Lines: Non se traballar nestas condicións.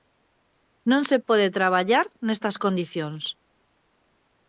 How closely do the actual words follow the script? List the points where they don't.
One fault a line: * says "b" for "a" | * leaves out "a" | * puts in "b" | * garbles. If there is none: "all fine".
* puts in "pode"